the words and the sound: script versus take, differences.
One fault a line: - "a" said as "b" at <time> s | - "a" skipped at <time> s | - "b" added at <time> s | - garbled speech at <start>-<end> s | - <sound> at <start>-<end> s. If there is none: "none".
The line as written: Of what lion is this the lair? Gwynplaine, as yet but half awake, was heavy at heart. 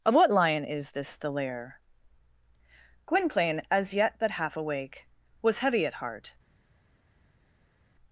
none